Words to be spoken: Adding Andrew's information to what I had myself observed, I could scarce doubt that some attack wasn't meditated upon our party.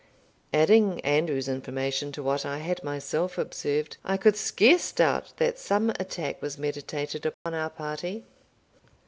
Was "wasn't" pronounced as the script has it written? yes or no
no